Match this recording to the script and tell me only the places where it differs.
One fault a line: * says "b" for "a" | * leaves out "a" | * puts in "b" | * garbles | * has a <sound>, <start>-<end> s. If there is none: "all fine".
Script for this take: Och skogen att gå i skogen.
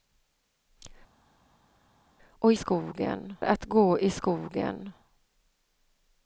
all fine